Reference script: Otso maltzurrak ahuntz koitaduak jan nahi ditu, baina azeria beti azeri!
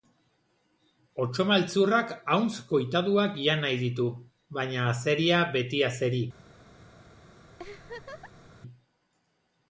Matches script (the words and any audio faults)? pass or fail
fail